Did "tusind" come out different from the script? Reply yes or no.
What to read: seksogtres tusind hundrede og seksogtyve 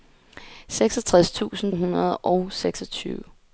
no